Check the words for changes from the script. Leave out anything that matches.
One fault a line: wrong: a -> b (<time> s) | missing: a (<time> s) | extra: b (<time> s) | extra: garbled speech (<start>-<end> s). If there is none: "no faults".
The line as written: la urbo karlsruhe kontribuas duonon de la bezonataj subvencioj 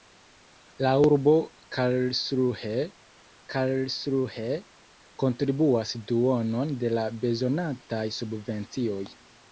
extra: karlsruhe (3.5 s)